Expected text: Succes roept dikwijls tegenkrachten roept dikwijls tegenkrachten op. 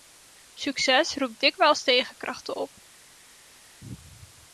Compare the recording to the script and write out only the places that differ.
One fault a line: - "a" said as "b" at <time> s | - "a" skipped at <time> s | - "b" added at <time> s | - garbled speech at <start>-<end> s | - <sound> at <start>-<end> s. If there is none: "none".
- "roept dikwijls tegenkrachten" skipped at 2.6 s